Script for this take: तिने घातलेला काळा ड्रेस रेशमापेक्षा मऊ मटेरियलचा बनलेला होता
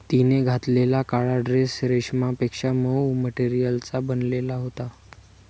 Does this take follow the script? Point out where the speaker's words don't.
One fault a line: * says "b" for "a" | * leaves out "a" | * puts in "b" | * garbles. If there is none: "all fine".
all fine